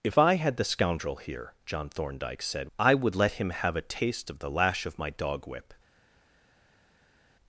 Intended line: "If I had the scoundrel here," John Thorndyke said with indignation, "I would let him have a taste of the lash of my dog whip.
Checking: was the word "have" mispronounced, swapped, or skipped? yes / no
no